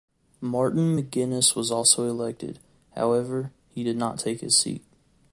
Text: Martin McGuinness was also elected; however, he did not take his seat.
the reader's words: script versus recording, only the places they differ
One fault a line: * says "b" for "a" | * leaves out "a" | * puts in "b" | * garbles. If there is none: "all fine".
all fine